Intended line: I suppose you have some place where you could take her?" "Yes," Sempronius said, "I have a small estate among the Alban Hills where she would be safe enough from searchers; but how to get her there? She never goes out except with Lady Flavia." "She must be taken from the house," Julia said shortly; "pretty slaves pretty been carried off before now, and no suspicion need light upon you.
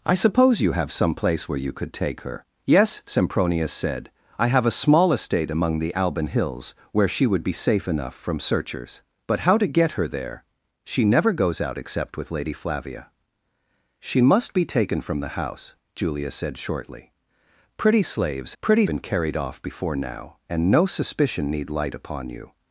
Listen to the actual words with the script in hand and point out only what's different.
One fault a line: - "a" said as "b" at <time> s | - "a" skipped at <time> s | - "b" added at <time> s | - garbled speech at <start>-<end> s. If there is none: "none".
none